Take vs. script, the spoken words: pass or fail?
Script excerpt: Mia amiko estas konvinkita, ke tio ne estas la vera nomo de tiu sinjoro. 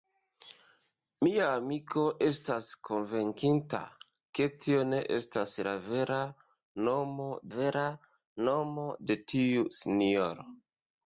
fail